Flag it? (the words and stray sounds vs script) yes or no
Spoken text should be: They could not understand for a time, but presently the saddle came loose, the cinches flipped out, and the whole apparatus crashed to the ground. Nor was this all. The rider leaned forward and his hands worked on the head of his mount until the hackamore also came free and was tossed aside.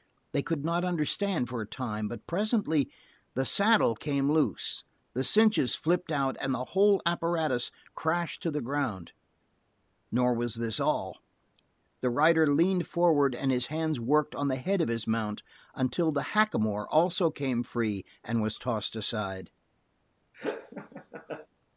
yes